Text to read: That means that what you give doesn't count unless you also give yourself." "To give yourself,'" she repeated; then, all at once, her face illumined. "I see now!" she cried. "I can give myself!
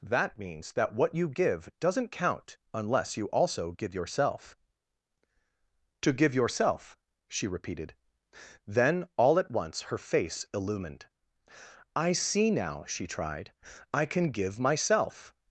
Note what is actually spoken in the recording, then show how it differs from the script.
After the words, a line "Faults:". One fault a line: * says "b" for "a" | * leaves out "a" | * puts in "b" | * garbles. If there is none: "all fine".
That means that what you give doesn't count unless you also give yourself." "To give yourself,'" she repeated; then, all at once, her face illumined. "I see now!" she tried. "I can give myself!
Faults:
* says "tried" for "cried"